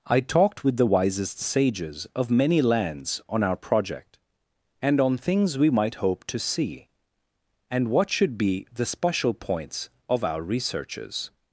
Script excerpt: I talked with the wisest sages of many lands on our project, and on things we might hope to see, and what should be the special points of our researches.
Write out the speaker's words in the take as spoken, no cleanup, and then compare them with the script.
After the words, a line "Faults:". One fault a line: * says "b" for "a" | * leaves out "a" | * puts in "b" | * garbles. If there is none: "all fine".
I talked with the wisest sages of many lands on our project, and on things we might hope to see, and what should be the special points of our researches.
Faults:
all fine